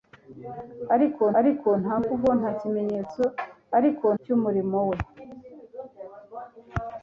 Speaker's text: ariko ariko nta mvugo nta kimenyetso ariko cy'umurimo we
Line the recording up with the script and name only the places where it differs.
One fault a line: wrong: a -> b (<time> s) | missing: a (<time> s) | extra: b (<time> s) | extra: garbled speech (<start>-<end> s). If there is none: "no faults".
no faults